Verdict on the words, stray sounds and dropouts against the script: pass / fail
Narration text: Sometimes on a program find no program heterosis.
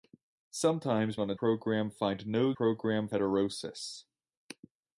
pass